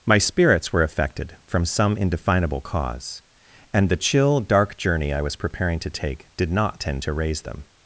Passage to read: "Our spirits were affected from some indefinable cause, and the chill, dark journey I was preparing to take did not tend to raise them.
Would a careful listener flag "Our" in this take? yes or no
yes